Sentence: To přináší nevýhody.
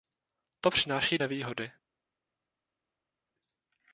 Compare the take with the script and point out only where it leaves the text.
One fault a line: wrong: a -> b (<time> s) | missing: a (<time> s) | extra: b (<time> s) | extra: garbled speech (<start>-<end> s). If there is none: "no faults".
no faults